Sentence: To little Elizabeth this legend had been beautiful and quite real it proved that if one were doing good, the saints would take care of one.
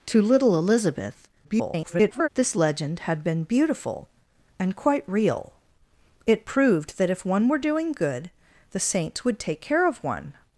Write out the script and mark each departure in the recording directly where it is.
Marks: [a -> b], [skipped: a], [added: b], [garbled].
To little Elizabeth [garbled] this legend had been beautiful and quite real it proved that if one were doing good, the saints would take care of one.